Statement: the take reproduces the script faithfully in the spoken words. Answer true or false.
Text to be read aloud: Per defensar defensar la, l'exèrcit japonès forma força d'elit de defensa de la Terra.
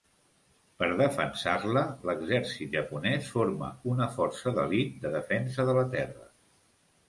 false